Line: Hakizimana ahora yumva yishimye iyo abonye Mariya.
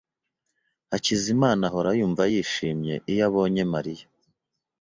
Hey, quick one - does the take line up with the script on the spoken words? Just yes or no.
yes